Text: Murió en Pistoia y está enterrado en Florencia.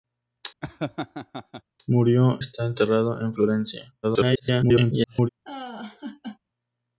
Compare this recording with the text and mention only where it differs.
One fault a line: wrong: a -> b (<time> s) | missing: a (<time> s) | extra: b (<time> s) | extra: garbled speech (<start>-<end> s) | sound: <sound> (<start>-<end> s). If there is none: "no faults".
sound: laugh (0.6-1.6 s)
missing: en Pistoia y (2.4 s)
extra: garbled speech (4.0-5.3 s)
sound: laugh (5.5-6.4 s)